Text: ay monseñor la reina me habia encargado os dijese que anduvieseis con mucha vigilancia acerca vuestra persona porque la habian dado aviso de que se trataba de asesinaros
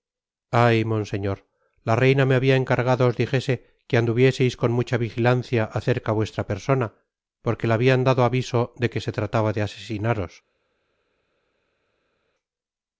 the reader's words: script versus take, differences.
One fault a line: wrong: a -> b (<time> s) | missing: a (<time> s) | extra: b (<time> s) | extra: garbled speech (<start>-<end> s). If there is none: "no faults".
no faults